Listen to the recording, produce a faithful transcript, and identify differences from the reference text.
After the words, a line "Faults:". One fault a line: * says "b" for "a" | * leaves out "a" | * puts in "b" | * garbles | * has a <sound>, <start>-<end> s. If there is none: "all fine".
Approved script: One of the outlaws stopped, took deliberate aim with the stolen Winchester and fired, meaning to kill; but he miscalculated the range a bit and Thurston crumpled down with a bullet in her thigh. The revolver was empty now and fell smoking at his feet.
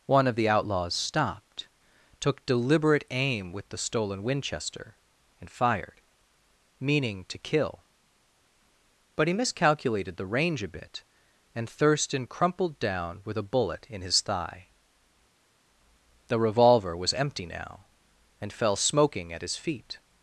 One of the outlaws stopped, took deliberate aim with the stolen Winchester and fired, meaning to kill; but he miscalculated the range a bit and Thurston crumpled down with a bullet in his thigh. The revolver was empty now and fell smoking at his feet.
Faults:
* says "his" for "her"